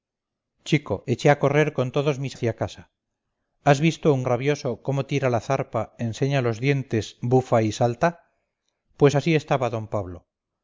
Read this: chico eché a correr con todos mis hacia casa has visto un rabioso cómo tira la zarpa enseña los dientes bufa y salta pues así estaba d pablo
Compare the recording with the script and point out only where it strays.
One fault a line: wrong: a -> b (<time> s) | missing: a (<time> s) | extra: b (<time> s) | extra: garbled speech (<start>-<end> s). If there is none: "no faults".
no faults